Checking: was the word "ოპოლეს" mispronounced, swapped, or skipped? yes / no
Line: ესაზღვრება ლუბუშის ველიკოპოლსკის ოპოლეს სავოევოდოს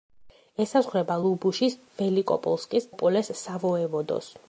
no